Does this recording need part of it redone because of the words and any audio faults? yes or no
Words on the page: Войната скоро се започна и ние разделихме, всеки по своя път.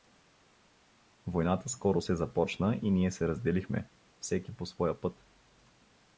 yes